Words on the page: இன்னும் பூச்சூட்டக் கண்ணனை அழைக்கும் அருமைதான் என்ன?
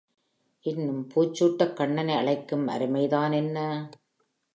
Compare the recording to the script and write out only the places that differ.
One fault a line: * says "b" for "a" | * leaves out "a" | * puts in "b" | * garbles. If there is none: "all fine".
all fine